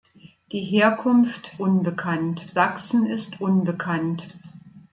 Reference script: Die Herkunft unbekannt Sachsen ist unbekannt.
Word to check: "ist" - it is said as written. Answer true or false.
true